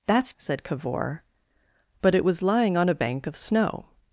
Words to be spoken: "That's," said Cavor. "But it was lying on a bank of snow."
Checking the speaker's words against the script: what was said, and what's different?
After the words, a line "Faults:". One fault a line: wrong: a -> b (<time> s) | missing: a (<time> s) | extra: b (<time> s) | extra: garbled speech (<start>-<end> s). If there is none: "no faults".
"That's," said Cavor. "But it was lying on a bank of snow."
Faults:
no faults